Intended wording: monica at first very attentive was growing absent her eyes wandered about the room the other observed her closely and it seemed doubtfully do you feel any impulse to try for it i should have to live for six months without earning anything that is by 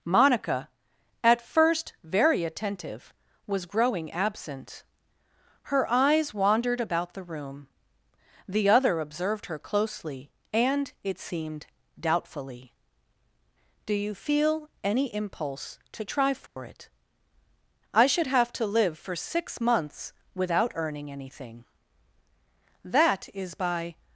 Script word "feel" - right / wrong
right